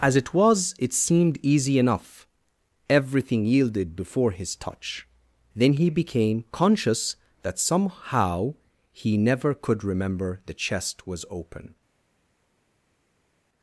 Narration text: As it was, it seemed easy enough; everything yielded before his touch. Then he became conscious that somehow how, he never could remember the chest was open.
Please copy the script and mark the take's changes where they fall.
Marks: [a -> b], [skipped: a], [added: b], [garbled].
As it was, it seemed easy enough; everything yielded before his touch. Then he became conscious that somehow [skipped: how,] he never could remember the chest was open.